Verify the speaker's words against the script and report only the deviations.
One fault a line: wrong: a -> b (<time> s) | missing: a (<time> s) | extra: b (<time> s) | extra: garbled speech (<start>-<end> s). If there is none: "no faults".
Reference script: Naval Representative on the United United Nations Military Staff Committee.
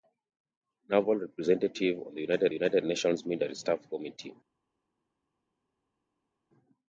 no faults